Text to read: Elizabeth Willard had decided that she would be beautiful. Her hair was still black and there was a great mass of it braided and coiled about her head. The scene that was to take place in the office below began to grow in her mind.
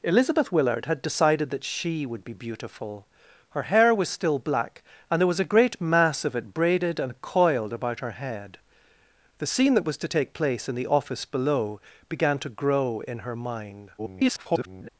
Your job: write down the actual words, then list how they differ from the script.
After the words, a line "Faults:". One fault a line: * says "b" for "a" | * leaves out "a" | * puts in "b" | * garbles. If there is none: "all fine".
Elizabeth Willard had decided that she would be beautiful. Her hair was still black and there was a great mass of it braided and coiled about her head. The scene that was to take place in the office below began to grow in her mind. [garbled]
Faults:
* garbles